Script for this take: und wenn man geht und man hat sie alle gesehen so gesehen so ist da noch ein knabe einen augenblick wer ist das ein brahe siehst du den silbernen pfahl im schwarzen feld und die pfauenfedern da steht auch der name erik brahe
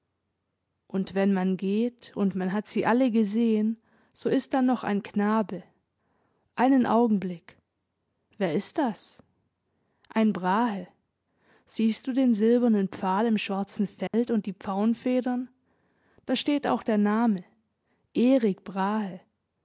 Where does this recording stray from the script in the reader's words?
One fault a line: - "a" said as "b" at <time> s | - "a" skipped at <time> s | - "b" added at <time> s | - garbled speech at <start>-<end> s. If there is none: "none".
- "gesehen so" skipped at 4.3 s